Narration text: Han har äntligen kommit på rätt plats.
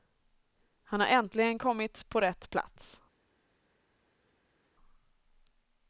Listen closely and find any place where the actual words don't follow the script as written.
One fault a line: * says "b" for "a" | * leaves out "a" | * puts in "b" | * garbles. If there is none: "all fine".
all fine